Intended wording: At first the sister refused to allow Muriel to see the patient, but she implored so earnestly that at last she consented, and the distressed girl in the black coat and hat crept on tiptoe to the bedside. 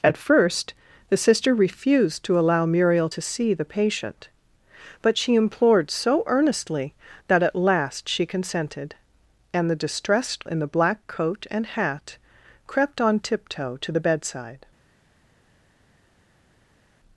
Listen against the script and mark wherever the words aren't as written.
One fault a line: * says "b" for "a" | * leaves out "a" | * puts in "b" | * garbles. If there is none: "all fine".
* leaves out "girl"